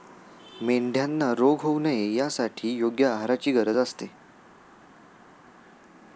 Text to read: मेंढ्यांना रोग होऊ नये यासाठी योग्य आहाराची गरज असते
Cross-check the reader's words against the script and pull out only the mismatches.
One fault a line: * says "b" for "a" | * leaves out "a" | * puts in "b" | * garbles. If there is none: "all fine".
all fine